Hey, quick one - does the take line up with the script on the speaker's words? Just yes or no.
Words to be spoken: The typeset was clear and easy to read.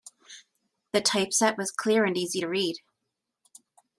yes